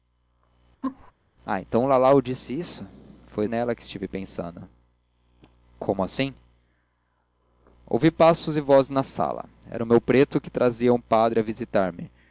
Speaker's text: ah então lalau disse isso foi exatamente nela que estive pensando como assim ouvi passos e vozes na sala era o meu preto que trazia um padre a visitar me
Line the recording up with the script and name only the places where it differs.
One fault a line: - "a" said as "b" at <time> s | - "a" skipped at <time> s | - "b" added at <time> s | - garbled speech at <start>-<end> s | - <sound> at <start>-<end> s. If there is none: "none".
- laugh at 0.8-1.1 s
- "exatamente" skipped at 3.4 s